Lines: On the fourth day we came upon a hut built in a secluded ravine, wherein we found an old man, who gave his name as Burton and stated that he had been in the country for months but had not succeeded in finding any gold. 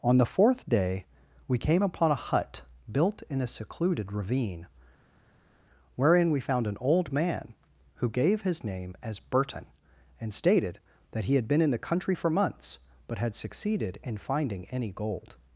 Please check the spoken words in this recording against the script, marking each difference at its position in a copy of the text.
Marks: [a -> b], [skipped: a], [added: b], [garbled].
On the fourth day we came upon a hut built in a secluded ravine, wherein we found an old man, who gave his name as Burton and stated that he had been in the country for months but had [skipped: not] succeeded in finding any gold.